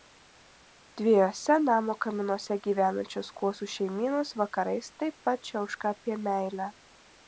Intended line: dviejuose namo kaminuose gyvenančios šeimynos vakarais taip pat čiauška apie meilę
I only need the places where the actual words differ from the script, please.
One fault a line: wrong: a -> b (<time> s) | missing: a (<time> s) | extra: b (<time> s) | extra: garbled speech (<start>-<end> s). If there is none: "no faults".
extra: kuosų (3.4 s)